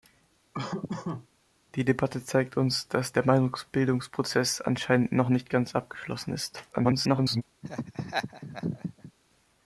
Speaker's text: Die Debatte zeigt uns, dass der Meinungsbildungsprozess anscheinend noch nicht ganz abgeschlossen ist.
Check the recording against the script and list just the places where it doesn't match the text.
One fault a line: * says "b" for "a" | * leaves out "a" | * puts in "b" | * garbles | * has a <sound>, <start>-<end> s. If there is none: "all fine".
* has a laugh, 0.5-1.3 s
* garbles
* has a laugh, 7.6-9.1 s